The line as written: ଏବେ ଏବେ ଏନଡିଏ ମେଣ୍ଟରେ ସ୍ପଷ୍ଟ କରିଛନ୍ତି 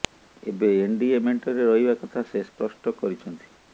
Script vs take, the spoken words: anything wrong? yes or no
yes